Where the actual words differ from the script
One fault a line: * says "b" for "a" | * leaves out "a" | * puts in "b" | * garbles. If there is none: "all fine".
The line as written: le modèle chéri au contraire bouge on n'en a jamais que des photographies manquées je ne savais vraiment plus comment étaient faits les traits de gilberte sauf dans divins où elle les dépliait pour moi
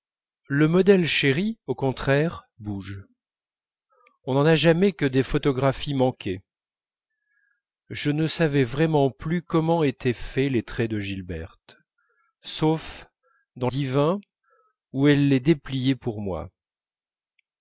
all fine